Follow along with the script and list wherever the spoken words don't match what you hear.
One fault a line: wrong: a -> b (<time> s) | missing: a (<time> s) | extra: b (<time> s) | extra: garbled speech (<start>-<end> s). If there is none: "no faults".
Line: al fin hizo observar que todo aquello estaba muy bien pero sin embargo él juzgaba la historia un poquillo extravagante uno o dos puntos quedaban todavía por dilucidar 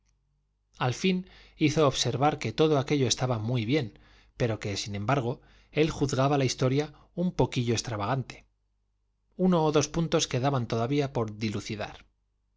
extra: que (4.6 s)